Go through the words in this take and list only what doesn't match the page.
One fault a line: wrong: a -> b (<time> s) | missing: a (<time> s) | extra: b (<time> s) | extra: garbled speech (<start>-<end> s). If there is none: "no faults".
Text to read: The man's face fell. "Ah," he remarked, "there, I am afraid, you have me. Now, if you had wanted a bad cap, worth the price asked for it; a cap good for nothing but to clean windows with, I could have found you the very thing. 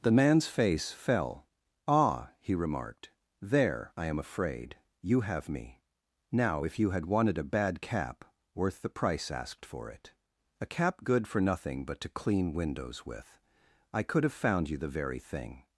no faults